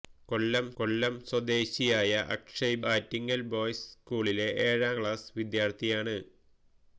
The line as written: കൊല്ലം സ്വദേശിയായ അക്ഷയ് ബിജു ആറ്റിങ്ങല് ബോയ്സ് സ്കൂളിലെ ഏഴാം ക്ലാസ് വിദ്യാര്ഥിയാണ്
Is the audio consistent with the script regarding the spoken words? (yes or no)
no